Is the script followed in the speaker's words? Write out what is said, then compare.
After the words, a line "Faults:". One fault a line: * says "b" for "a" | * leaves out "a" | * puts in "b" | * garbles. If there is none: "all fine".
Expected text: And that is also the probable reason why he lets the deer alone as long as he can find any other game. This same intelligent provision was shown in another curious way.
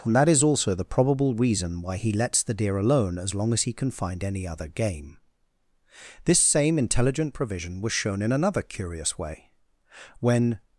And that is also the probable reason why he lets the deer alone as long as he can find any other game. This same intelligent provision was shown in another curious way. When
Faults:
* puts in "When"